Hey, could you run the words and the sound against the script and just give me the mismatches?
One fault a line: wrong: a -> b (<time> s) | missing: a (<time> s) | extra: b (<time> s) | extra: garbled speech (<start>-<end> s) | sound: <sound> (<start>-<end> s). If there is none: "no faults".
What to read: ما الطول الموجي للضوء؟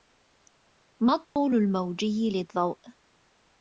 sound: dropout (1.2-1.4 s)